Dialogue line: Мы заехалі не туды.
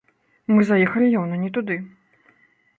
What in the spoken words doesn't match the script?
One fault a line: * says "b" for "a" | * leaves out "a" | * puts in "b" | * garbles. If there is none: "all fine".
* puts in "яўна"